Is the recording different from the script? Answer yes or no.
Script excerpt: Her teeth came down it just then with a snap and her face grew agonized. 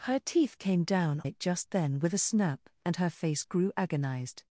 no